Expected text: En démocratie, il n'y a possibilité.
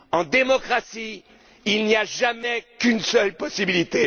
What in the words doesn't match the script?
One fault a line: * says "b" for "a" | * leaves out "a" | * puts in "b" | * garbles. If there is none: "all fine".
* puts in "jamais qu'une seule"